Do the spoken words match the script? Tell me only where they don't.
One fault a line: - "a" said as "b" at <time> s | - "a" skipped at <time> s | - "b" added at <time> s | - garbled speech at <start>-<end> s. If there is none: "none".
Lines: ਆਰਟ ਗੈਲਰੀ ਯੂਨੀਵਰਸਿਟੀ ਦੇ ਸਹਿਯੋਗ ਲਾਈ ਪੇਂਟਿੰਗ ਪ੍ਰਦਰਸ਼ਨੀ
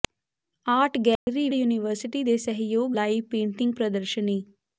none